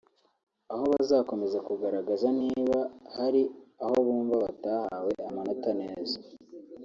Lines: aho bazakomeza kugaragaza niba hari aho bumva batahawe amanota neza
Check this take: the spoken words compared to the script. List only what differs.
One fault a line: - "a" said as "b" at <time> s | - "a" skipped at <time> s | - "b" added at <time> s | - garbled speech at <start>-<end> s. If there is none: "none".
none